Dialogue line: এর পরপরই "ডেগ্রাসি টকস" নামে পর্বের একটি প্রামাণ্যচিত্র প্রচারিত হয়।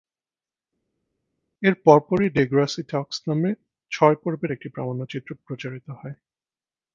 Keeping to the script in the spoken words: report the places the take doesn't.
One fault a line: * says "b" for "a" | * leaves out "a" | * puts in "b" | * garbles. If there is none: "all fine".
* puts in "ছয়"